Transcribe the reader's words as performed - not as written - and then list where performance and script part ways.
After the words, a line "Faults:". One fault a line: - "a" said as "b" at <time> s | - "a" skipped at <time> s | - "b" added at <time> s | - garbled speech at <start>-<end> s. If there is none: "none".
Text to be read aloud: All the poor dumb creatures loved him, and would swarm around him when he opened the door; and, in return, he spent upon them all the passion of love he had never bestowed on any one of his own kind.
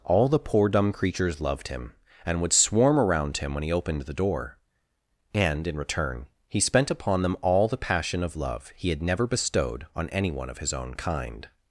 All the poor dumb creatures loved him, and would swarm around him when he opened the door; and, in return, he spent upon them all the passion of love he had never bestowed on any one of his own kind.
Faults:
none